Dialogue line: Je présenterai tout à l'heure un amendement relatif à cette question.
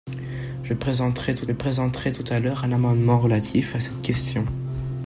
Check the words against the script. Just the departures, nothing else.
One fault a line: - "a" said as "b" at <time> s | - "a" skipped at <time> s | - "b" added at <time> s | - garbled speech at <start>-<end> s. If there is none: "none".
- "présenterai tout" added at 1.5 s